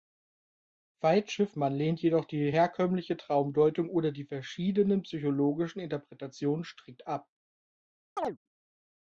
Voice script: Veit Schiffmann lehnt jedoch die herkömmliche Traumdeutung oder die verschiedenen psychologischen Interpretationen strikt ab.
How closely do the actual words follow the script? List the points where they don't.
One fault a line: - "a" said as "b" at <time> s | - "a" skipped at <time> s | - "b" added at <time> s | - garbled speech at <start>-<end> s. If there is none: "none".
none